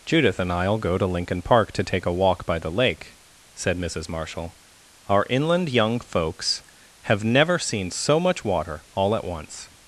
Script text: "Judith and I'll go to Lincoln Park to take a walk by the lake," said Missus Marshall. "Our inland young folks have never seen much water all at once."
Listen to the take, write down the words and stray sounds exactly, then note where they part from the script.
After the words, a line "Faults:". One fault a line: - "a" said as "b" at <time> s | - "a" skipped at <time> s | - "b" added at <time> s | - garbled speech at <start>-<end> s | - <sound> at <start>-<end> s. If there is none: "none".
"Judith and I'll go to Lincoln Park to take a walk by the lake," said Missus Marshall. "Our inland young folks have never seen so much water all at once."
Faults:
- "so" added at 7.9 s